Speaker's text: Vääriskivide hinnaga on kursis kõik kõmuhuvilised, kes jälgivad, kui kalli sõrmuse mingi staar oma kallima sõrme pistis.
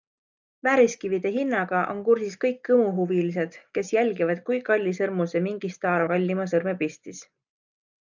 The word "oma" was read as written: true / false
false